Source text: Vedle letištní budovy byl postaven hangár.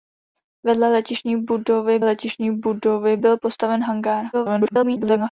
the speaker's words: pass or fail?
fail